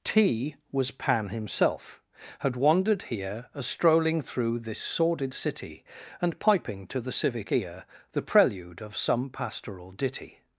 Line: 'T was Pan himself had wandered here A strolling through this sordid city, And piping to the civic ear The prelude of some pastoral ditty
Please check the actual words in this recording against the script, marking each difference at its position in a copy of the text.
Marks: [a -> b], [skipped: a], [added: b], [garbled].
'T was Pan himself had wandered here A strolling through this sordid city, And piping to the civic ear The prelude of some pastoral ditty